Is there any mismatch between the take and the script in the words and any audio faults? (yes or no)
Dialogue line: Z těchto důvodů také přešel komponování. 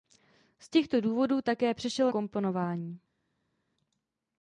no